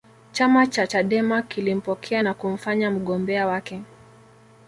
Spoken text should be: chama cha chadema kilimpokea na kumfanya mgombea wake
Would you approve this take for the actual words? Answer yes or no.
yes